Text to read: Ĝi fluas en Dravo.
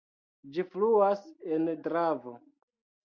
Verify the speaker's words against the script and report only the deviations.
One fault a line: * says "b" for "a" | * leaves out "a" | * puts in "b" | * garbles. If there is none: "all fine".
all fine